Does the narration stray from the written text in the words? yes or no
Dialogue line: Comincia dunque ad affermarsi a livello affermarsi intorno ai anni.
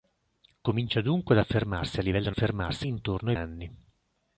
no